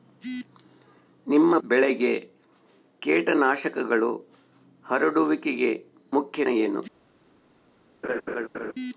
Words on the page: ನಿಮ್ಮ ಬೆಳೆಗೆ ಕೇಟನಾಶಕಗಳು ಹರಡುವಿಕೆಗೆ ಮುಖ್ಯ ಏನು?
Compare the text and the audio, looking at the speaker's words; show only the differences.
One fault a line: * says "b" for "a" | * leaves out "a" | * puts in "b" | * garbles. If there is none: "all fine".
all fine